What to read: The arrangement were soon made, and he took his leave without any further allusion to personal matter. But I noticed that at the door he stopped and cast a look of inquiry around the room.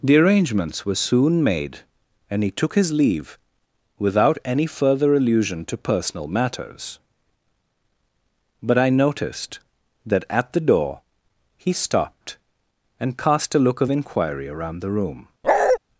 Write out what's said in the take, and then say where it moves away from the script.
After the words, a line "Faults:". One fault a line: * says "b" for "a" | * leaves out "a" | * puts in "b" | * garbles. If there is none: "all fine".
The arrangements were soon made, and he took his leave without any further allusion to personal matters. But I noticed that at the door he stopped and cast a look of inquiry around the room.
Faults:
* says "arrangements" for "arrangement"
* says "matters" for "matter"